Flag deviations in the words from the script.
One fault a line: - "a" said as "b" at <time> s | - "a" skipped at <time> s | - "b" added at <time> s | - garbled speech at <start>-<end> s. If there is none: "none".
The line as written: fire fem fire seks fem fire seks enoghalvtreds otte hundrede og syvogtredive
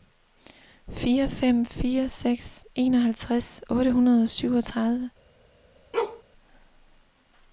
- "fem fire seks" skipped at 2.6 s